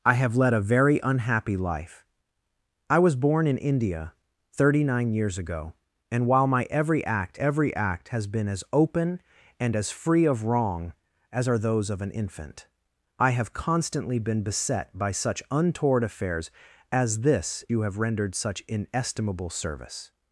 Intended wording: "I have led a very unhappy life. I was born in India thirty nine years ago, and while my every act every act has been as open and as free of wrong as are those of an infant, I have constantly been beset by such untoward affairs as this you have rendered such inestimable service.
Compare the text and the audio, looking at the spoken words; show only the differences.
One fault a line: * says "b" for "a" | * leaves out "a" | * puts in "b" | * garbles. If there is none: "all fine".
all fine